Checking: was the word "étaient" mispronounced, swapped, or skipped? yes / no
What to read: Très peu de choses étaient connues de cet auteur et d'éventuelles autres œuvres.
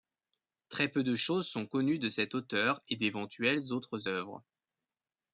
yes